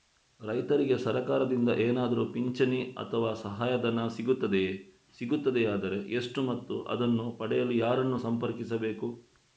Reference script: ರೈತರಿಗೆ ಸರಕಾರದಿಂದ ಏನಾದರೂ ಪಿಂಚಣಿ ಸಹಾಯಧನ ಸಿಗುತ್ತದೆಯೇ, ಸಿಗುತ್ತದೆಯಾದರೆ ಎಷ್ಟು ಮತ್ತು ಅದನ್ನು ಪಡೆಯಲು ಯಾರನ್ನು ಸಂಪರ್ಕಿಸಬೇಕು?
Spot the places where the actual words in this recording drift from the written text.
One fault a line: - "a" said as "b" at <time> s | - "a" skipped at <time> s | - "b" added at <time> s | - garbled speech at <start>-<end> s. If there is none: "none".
- "ಅಥವಾ" added at 3.0 s